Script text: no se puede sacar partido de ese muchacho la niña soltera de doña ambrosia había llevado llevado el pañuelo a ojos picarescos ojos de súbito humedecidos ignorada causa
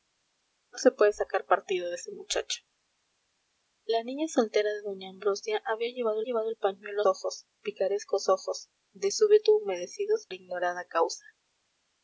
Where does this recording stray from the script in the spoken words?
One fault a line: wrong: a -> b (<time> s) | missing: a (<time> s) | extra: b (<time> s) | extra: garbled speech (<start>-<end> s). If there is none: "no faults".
no faults